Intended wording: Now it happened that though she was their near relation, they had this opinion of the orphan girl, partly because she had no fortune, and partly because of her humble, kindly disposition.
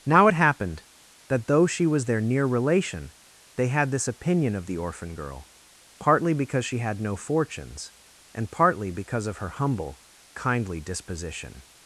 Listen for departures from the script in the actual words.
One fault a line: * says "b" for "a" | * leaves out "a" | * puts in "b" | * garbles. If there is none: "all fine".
* says "fortunes" for "fortune"